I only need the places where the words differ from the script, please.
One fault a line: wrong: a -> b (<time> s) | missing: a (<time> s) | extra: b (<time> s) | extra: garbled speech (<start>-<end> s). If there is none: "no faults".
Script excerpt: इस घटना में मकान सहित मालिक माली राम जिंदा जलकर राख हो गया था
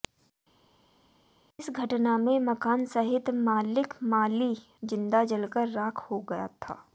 missing: राम (4.5 s)